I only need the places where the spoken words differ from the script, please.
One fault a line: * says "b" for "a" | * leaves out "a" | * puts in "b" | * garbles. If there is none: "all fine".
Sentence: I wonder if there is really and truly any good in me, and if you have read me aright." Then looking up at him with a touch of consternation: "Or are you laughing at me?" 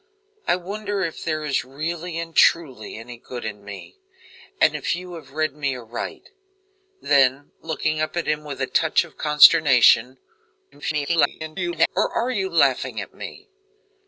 * garbles